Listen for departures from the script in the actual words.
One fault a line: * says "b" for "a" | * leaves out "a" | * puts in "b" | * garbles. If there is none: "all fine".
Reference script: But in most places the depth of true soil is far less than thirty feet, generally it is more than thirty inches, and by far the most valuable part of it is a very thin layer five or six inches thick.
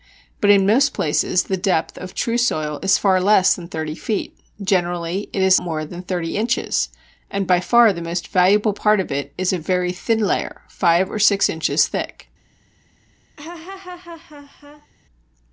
all fine